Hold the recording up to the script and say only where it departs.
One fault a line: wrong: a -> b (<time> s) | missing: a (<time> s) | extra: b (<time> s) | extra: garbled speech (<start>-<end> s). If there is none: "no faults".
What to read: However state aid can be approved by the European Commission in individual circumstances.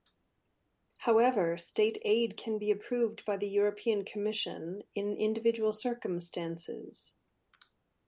no faults